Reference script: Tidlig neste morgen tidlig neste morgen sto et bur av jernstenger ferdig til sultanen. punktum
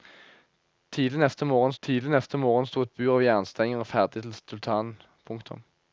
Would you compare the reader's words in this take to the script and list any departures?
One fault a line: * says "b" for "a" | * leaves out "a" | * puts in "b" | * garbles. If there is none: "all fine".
all fine